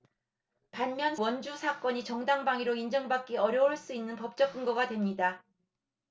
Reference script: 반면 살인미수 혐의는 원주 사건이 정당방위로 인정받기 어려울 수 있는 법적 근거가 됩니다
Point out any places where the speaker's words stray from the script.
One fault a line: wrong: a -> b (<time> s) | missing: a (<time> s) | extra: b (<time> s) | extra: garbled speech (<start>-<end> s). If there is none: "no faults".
missing: 살인미수 혐의는 (1.1 s)